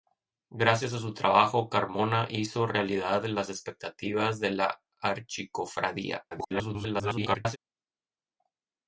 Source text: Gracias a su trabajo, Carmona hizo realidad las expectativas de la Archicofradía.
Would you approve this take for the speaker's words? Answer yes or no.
no